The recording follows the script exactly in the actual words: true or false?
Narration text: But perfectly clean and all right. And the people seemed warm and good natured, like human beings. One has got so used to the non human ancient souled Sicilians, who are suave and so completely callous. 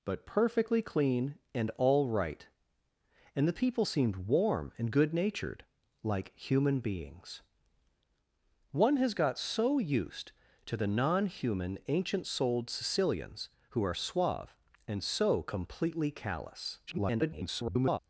false